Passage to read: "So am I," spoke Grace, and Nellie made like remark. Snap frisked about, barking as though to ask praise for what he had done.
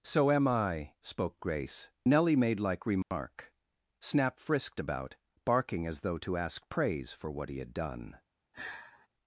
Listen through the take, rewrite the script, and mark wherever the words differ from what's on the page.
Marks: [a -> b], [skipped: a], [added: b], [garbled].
"So am I," spoke Grace, [skipped: and] Nellie made like remark. Snap frisked about, barking as though to ask praise for what he had done.